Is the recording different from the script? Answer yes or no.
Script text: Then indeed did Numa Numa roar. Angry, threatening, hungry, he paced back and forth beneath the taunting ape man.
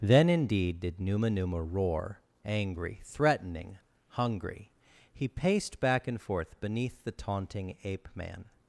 no